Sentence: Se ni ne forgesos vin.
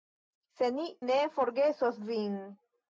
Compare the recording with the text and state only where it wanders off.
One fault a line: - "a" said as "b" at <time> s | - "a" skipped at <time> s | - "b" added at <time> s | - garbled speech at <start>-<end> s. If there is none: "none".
none